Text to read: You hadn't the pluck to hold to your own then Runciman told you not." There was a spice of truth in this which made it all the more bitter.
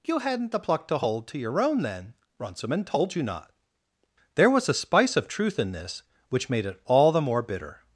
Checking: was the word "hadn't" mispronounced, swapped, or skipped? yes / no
no